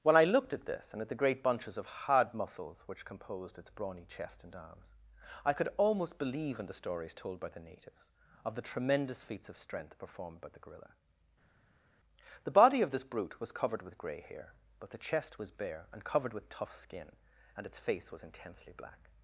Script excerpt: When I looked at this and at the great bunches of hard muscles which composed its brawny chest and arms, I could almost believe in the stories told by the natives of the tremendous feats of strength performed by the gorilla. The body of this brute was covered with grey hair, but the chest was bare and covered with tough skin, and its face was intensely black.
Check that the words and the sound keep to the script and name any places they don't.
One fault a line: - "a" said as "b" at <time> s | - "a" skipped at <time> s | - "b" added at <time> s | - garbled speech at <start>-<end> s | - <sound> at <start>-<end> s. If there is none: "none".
none